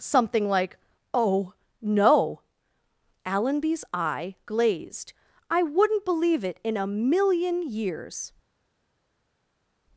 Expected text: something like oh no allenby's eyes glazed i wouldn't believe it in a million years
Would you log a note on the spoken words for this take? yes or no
yes